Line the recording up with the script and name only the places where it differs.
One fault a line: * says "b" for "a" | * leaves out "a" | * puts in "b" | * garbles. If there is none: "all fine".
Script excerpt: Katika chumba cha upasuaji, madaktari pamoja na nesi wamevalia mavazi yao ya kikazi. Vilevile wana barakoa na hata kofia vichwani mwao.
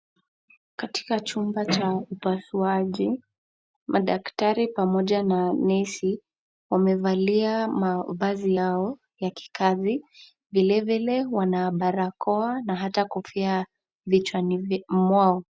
all fine